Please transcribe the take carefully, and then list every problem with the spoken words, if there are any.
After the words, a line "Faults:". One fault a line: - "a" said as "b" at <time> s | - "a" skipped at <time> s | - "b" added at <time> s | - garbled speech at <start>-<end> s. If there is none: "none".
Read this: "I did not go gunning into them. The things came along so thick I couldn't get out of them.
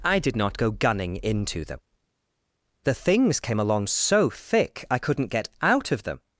"I did not go gunning into them. The things came along so thick I couldn't get out of them.
Faults:
none